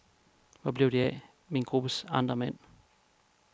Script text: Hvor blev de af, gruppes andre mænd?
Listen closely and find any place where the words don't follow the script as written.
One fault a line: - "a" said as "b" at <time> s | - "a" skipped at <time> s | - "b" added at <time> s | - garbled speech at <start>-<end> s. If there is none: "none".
- "min" added at 1.5 s